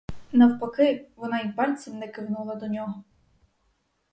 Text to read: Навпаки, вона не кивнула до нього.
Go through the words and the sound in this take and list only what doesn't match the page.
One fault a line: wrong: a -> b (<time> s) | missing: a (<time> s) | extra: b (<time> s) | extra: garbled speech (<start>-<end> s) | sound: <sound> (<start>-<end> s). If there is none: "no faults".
extra: й пальцем (1.4 s)